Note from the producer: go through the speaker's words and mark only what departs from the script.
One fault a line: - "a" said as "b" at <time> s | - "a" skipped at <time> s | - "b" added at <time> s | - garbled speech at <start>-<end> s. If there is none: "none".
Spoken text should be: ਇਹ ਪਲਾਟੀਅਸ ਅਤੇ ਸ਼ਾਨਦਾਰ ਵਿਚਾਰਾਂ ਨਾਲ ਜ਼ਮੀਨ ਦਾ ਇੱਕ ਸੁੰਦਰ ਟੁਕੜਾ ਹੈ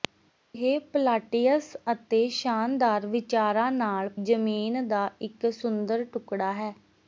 none